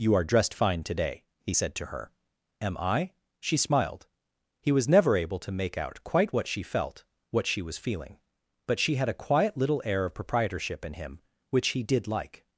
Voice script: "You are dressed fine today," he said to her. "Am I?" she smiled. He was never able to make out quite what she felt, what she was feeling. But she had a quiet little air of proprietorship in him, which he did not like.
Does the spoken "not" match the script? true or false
false